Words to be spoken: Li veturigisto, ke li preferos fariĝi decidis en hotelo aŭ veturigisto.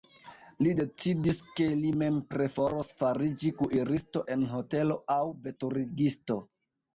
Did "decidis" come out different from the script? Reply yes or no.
yes